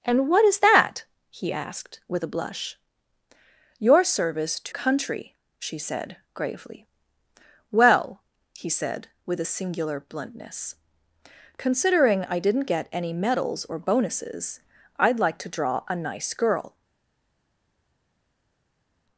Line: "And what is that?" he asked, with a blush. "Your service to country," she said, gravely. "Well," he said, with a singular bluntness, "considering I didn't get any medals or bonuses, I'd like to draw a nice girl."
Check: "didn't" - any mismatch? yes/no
no